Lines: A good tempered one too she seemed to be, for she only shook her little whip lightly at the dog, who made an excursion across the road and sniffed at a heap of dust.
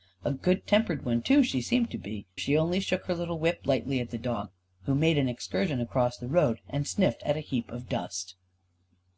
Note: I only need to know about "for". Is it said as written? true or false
false